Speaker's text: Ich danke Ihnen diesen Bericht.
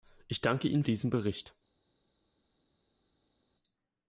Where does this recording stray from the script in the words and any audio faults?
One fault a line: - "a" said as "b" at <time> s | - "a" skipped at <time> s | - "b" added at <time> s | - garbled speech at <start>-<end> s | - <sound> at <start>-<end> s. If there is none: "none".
none